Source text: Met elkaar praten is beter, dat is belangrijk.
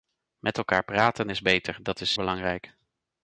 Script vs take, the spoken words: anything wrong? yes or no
no